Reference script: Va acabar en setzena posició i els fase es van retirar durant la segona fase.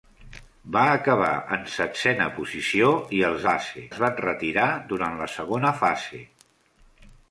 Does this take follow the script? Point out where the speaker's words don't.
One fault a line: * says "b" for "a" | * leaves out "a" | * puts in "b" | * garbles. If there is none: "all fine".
all fine